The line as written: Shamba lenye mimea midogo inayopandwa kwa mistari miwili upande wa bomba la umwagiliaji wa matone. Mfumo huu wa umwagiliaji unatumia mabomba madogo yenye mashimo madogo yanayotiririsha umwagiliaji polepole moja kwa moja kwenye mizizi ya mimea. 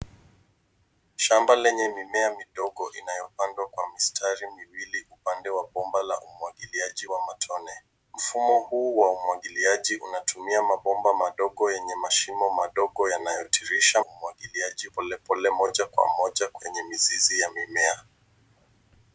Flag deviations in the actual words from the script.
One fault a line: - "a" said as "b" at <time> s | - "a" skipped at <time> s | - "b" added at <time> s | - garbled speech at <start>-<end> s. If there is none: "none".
none